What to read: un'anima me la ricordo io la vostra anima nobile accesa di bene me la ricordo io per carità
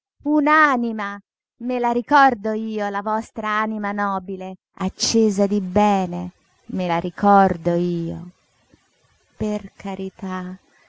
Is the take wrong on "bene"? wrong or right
right